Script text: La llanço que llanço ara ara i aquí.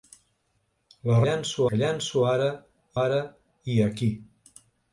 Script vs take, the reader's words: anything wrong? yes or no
no